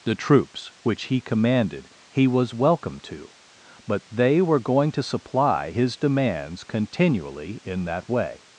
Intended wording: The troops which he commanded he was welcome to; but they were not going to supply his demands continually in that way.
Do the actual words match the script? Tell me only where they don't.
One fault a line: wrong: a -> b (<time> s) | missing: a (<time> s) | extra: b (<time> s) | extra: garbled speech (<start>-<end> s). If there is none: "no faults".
missing: not (4.6 s)